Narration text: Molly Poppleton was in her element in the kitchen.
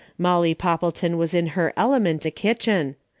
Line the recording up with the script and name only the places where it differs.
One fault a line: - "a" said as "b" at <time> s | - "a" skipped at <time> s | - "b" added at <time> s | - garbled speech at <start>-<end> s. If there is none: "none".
- "in" skipped at 2.2 s